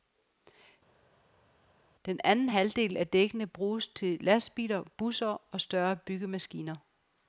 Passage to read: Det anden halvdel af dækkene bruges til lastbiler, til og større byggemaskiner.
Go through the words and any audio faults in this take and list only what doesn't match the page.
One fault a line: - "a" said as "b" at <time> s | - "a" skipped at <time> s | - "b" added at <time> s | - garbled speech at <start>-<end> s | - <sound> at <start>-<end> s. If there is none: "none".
- "Det" said as "Den" at 2.0 s
- "til" said as "busser" at 5.0 s